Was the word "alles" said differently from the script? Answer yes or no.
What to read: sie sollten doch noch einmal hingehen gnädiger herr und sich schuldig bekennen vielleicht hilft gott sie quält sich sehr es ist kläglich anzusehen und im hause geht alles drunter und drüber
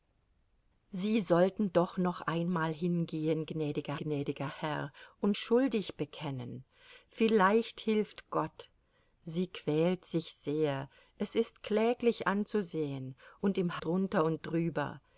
yes